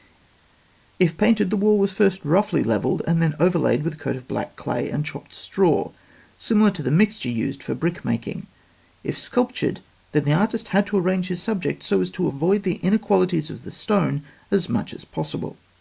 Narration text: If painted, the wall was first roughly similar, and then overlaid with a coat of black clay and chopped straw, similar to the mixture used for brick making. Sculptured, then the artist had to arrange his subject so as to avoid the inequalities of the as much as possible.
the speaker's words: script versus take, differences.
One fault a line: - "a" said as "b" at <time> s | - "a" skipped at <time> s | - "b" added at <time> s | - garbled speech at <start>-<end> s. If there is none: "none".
- "similar" said as "levelled" at 2.6 s
- "If" added at 9.0 s
- "stone" added at 13.7 s